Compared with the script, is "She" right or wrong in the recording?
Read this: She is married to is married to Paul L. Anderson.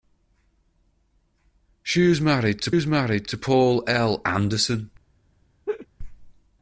right